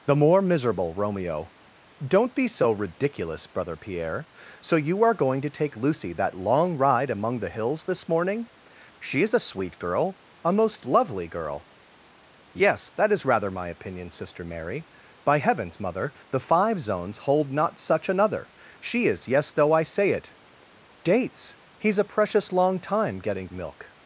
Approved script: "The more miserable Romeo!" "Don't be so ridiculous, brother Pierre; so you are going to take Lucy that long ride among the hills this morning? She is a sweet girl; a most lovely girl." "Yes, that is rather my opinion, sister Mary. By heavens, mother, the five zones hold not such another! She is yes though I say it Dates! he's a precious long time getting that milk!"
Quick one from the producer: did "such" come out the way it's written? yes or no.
yes